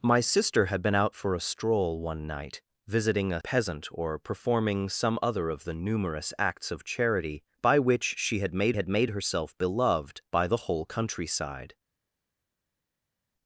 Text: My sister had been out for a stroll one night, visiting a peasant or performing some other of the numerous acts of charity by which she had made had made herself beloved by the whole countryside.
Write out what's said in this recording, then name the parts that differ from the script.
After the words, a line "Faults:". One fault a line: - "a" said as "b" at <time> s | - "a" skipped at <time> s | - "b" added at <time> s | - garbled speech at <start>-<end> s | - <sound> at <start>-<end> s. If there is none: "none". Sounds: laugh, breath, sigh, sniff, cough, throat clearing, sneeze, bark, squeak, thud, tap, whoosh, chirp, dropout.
My sister had been out for a stroll one night, visiting a peasant or performing some other of the numerous acts of charity by which she had made had made herself beloved by the whole countryside.
Faults:
none